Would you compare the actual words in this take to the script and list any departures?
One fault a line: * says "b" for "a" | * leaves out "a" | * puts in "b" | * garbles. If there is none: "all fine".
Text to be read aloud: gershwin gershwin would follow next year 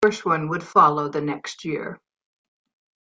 * leaves out "gershwin"
* puts in "the"